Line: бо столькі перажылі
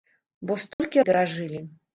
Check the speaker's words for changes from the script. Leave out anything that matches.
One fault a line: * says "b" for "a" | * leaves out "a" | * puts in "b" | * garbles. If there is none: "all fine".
all fine